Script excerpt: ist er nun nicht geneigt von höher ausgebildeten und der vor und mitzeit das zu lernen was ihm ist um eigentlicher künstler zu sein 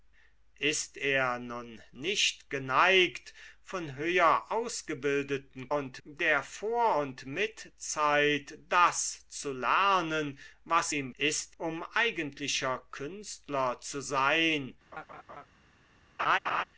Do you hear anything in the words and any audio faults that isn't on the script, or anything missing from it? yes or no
yes